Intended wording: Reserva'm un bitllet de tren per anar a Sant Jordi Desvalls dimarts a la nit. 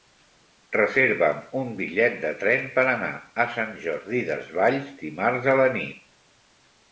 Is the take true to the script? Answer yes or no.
yes